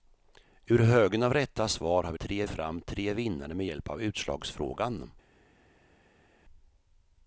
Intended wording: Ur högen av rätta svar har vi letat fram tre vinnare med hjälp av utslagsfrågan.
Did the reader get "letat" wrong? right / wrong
wrong